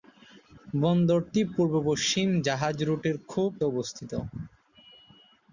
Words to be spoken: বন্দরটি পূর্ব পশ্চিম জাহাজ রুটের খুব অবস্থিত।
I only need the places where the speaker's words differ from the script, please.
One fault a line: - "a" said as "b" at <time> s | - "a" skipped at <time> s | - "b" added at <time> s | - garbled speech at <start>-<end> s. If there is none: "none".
none